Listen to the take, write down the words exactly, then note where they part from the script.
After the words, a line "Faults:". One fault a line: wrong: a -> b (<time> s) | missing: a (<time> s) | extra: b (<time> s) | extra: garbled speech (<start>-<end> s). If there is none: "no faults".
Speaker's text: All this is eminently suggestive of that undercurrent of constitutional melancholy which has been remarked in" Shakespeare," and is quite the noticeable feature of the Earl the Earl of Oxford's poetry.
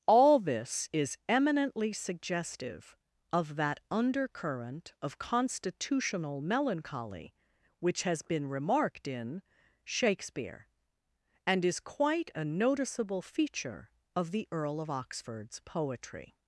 All this is eminently suggestive of that undercurrent of constitutional melancholy which has been remarked in" Shakespeare," and is quite a noticeable feature of the Earl of Oxford's poetry.
Faults:
wrong: the -> a (12.3 s)
missing: the Earl (14.8 s)